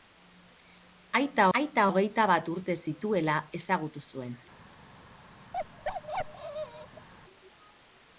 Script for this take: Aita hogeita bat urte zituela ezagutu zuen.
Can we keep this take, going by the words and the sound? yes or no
no